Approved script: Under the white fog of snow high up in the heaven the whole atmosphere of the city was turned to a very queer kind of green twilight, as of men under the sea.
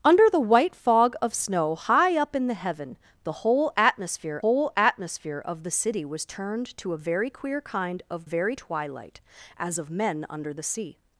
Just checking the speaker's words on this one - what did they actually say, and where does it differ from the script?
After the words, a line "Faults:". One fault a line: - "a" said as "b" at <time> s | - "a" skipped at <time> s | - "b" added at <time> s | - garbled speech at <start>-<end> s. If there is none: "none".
Under the white fog of snow high up in the heaven the whole atmosphere whole atmosphere of the city was turned to a very queer kind of very twilight, as of men under the sea.
Faults:
- "whole atmosphere" added at 4.4 s
- "green" said as "very" at 8.2 s